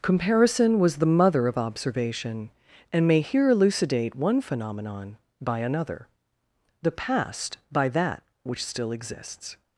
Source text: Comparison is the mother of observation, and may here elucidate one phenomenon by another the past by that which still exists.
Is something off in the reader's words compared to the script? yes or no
yes